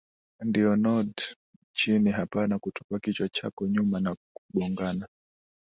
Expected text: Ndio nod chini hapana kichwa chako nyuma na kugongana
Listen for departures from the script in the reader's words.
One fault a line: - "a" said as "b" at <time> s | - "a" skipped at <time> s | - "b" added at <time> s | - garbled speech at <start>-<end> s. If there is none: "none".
- "kutupa" added at 2.6 s